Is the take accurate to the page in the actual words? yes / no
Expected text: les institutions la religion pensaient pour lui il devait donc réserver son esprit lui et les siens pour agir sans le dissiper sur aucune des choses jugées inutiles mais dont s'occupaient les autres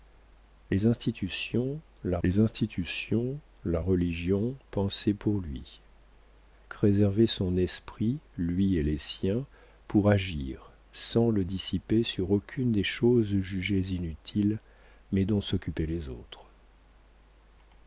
no